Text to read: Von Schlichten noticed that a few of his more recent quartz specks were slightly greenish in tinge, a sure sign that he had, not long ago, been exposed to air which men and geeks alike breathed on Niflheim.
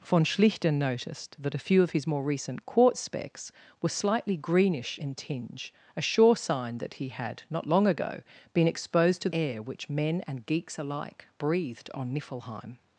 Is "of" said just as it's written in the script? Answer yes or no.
yes